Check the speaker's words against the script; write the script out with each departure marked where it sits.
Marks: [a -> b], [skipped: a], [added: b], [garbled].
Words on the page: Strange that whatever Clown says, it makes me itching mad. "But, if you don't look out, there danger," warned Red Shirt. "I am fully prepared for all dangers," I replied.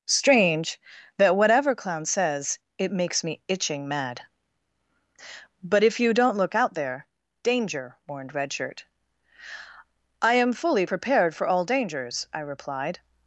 Strange that whatever Clown says, it makes me itching mad. "But, if you don't look out, there danger," warned Red Shirt. "I am fully prepared for all dangers," I replied.